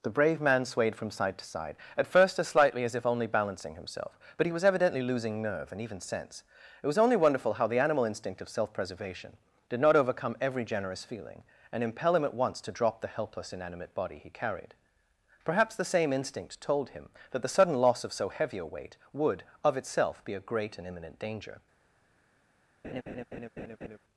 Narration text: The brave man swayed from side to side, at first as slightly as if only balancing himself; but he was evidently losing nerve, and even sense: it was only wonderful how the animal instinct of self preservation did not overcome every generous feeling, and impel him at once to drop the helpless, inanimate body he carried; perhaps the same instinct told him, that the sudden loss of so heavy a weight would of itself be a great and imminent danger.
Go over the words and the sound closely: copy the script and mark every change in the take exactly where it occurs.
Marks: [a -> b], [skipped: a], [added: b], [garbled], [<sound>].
The brave man swayed from side to side, at first as slightly as if only balancing himself; but he was evidently losing nerve, and even sense: it was only wonderful how the animal instinct of self preservation did not overcome every generous feeling, and impel him at once to drop the helpless, inanimate body he carried; perhaps the same instinct told him, that the sudden loss of so heavy a weight would of itself be a great and imminent danger. [laugh]